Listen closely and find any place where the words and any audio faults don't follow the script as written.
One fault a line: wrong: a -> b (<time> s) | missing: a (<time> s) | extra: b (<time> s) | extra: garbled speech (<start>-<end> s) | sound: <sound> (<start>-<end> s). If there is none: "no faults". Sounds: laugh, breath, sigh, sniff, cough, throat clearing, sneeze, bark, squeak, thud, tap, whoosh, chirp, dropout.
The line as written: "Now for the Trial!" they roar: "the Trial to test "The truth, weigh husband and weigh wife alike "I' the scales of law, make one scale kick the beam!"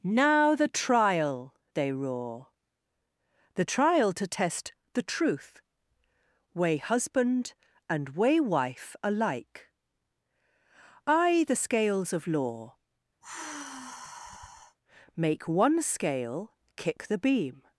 missing: for (0.6 s)
sound: sigh (13.2-14.8 s)